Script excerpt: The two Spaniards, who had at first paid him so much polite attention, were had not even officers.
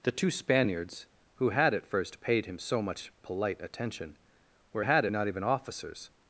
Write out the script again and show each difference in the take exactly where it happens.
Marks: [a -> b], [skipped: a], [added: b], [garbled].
The two Spaniards, who had at first paid him so much polite attention, were had not even officers.